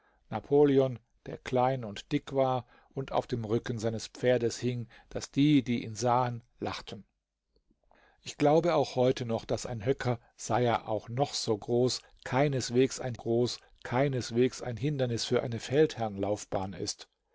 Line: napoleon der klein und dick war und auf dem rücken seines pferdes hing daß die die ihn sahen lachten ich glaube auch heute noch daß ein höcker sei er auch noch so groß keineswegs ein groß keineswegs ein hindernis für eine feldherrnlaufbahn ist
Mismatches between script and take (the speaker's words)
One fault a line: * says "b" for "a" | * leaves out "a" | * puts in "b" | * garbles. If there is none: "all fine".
all fine